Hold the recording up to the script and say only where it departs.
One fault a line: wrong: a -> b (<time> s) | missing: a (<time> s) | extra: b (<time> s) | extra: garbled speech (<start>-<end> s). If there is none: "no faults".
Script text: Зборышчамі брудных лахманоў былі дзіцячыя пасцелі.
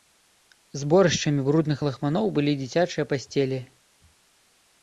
no faults